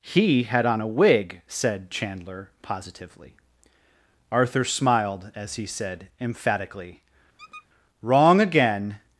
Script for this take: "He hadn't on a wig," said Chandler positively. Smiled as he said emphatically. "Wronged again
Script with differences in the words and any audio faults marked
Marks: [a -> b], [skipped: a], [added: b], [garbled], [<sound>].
"He [hadn't -> had] on a wig," said Chandler positively. [added: Arthur] Smiled as he said emphatically. [squeak] ["Wronged -> Wrong] again